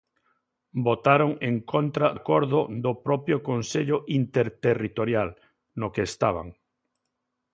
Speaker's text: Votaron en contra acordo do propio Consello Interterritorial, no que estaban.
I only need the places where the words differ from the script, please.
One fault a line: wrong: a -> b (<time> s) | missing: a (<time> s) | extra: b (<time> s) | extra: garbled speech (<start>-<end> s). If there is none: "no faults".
no faults